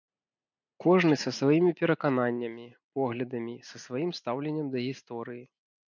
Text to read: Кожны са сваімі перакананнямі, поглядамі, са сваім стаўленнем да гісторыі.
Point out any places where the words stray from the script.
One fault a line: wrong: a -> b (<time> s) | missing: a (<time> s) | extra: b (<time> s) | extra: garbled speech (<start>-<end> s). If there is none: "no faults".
no faults